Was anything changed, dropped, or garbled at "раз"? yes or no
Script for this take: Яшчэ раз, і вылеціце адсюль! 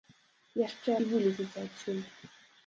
yes